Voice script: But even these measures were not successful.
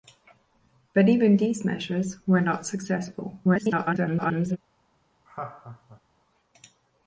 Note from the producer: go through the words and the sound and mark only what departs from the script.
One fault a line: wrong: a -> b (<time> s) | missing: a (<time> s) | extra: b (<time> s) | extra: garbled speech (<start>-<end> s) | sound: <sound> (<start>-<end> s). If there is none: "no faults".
extra: garbled speech (3.4-4.6 s)
sound: laugh (5.3-6.0 s)